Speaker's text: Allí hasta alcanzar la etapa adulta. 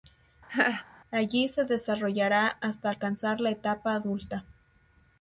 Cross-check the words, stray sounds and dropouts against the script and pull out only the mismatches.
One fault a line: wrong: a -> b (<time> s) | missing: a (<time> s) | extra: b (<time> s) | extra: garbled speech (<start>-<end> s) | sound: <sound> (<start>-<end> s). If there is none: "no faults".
sound: laugh (0.5-0.9 s)
extra: se desarrollará (1.5 s)